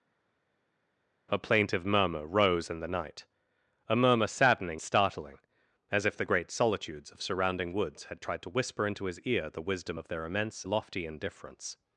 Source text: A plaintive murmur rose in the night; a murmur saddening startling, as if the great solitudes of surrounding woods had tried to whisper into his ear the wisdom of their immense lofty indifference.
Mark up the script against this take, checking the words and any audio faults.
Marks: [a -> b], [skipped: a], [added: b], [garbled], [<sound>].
A plaintive murmur rose in the night; a murmur saddening startling, as if the great solitudes of surrounding woods had tried to whisper into his ear the wisdom of their immense lofty indifference.